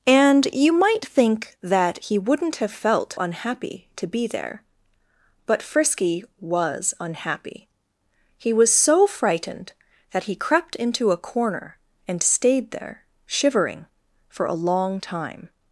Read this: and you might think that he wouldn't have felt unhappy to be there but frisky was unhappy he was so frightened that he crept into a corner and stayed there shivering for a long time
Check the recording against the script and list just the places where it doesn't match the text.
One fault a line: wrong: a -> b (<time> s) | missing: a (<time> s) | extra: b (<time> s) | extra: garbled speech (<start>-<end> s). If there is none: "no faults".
no faults